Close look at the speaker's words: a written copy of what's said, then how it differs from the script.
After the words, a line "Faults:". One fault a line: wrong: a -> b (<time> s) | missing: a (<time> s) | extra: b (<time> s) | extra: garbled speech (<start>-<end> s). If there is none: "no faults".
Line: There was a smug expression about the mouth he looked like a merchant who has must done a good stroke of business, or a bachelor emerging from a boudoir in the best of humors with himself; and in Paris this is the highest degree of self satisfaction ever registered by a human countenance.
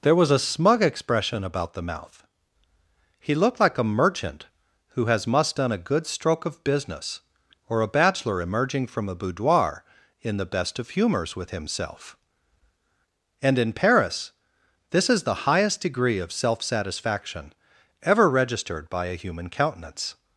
There was a smug expression about the mouth he looked like a merchant who has must done a good stroke of business, or a bachelor emerging from a boudoir in the best of humors with himself; and in Paris this is the highest degree of self satisfaction ever registered by a human countenance.
Faults:
no faults